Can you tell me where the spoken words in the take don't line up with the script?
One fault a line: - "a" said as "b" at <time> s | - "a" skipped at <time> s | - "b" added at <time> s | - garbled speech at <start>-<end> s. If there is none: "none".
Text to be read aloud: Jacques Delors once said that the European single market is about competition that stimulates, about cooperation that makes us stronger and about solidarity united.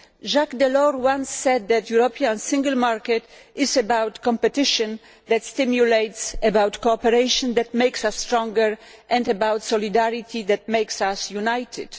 - "that makes us" added at 10.4 s